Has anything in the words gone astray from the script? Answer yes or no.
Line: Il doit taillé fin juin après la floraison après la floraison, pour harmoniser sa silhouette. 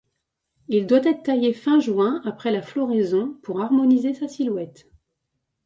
yes